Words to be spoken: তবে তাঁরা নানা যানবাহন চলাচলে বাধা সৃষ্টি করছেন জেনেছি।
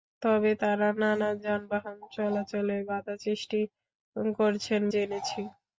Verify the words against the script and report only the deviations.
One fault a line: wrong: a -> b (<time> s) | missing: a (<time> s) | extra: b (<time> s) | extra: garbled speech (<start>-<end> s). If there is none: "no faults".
no faults